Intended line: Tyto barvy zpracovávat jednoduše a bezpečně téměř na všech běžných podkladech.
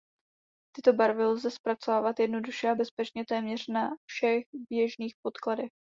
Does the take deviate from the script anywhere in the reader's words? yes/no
yes